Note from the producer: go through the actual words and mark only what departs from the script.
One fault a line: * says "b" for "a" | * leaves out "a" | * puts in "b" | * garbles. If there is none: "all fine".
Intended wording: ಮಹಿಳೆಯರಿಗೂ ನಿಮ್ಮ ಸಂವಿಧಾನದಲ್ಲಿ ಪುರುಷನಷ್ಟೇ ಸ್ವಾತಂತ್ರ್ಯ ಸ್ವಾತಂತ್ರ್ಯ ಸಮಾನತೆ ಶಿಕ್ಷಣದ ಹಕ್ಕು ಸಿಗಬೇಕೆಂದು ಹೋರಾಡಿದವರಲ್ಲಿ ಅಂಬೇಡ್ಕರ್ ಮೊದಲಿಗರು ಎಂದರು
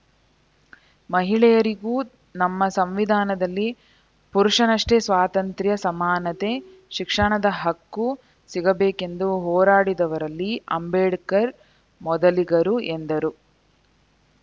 * says "ನಮ್ಮ" for "ನಿಮ್ಮ"
* leaves out "ಸ್ವಾತಂತ್ರ್ಯ"